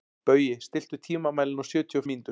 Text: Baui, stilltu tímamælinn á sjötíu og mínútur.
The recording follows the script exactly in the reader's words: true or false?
true